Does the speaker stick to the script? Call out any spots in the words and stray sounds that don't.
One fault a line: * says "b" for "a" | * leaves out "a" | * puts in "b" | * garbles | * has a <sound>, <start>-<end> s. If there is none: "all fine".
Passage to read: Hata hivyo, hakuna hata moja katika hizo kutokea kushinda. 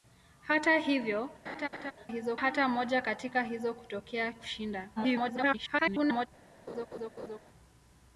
* has a laugh, 1.5-1.9 s
* says "hizo" for "hakuna"
* garbles
* has a laugh, 6.7-7.4 s